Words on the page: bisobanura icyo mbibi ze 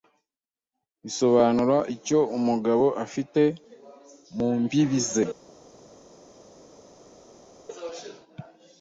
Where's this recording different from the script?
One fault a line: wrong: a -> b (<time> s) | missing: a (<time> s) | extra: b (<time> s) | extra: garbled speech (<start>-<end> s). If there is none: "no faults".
extra: umugabo afite mu (2.4 s)